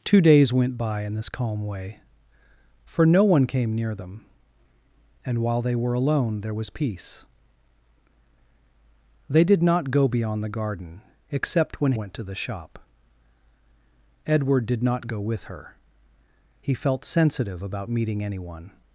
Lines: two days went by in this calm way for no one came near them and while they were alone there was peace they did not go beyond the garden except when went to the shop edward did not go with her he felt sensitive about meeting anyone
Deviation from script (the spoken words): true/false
false